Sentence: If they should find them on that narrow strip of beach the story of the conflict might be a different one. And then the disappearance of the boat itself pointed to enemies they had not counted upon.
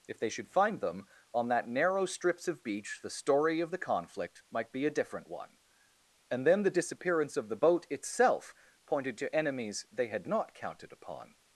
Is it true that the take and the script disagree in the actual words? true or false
true